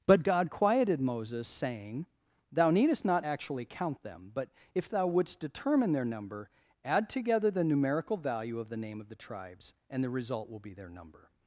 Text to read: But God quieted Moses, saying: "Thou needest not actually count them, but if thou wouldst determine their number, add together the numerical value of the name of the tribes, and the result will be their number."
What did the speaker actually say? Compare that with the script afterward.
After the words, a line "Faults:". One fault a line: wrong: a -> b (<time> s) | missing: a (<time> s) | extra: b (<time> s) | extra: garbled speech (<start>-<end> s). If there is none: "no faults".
But God quieted Moses, saying: "Thou needest not actually count them, but if thou wouldst determine their number, add together the numerical value of the name of the tribes, and the result will be their number."
Faults:
no faults